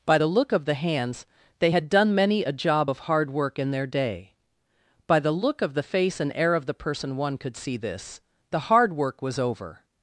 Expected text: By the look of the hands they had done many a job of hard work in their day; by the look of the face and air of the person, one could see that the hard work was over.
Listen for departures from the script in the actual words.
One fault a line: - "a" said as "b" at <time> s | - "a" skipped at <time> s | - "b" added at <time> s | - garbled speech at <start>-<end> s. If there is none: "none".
- "that" said as "this" at 7.8 s